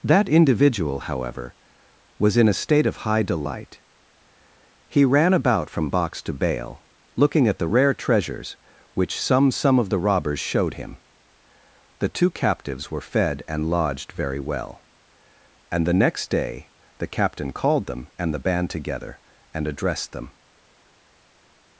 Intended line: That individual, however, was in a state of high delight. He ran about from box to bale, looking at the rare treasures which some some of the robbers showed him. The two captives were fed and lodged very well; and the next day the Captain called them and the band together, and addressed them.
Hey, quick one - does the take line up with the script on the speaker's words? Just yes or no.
yes